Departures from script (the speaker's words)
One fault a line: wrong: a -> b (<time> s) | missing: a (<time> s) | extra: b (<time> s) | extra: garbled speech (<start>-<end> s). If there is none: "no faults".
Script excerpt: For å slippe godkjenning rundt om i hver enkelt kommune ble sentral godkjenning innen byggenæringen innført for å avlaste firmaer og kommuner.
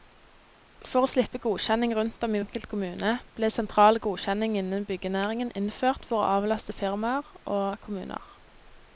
missing: hver (2.4 s)